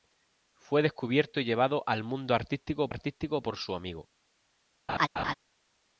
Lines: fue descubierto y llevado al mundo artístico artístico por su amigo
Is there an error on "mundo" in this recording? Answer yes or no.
no